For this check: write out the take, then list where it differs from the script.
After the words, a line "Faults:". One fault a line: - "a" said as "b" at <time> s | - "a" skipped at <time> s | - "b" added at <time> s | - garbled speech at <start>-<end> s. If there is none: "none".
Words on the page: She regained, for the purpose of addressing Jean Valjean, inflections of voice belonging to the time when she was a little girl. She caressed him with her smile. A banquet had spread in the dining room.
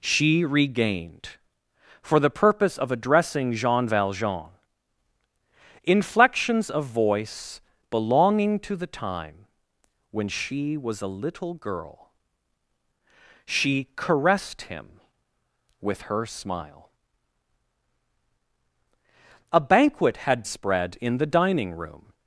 She regained, for the purpose of addressing Jean Valjean, inflections of voice belonging to the time when she was a little girl. She caressed him with her smile. A banquet had spread in the dining room.
Faults:
none